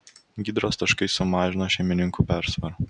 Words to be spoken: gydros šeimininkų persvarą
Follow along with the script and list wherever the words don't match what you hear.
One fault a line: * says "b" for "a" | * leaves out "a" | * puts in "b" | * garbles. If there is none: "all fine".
* puts in "taškai sumažino"